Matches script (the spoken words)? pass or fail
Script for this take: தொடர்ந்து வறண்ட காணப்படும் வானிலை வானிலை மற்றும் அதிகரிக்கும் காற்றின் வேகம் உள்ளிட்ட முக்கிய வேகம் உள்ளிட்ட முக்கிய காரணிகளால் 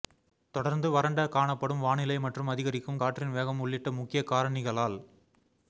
fail